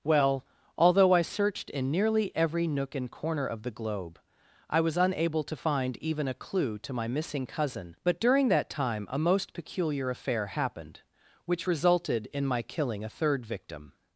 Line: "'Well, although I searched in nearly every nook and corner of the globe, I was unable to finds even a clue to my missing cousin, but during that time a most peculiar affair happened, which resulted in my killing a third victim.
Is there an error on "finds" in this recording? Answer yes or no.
yes